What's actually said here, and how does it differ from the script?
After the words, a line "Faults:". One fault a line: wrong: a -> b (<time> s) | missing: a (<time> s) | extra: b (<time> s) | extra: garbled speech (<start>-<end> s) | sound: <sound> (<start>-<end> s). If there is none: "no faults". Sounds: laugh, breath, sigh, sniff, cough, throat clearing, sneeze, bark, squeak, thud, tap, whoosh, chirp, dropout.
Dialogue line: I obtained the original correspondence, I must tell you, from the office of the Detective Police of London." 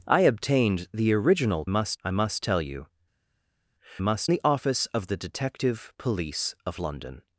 I obtained the original must, I must tell you, must the office of the Detective Police of London."
Faults:
wrong: correspondence -> must (1.7 s)
wrong: from -> must (4.0 s)